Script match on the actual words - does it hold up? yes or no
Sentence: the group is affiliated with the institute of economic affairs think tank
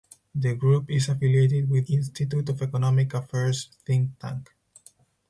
no